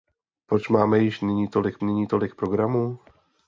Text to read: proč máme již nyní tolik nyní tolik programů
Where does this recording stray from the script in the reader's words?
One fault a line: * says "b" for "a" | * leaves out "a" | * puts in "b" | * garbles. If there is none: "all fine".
all fine